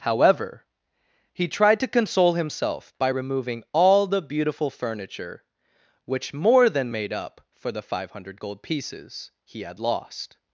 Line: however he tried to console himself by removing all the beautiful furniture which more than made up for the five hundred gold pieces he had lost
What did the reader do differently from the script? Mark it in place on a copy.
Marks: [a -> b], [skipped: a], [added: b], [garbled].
however he tried to console himself by removing all the beautiful furniture which more than made up for the five hundred gold pieces he had lost